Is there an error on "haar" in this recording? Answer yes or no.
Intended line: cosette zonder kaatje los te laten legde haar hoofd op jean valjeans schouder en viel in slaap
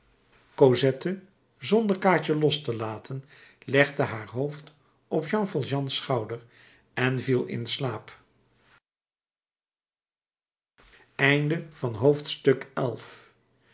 no